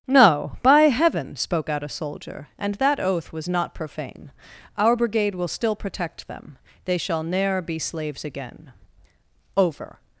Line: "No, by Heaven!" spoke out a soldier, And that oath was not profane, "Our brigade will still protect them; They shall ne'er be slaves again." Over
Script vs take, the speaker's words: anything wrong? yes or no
no